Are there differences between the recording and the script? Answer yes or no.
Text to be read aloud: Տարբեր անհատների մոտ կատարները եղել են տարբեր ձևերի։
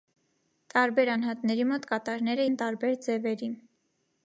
yes